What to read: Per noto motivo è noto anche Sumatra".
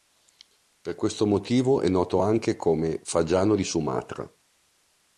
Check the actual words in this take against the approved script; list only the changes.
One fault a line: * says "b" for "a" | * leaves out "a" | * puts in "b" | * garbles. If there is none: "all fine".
* says "questo" for "noto"
* puts in "come fagiano di"